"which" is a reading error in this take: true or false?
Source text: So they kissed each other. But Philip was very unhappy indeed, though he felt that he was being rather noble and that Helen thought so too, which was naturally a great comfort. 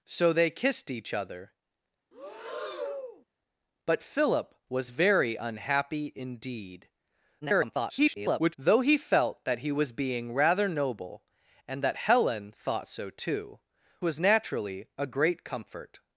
true